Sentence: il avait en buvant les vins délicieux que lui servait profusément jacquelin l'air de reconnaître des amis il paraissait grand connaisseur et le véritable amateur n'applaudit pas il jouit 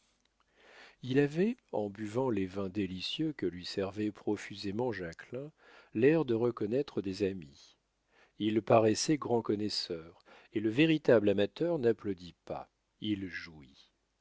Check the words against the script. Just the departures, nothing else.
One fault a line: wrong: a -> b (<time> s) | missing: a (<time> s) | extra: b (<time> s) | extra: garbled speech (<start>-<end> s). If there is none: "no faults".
no faults